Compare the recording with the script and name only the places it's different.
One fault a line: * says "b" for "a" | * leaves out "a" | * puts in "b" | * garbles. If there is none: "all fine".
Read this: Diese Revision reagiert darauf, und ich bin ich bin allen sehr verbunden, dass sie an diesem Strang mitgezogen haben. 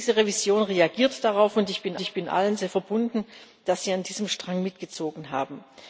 all fine